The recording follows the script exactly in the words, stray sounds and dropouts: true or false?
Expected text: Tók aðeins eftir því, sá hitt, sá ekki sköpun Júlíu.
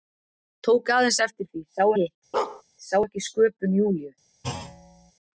false